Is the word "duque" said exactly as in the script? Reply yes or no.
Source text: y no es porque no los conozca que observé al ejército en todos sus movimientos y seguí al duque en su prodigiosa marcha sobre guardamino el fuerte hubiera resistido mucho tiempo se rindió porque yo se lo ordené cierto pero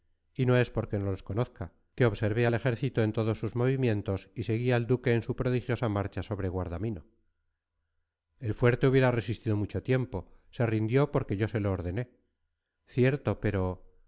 yes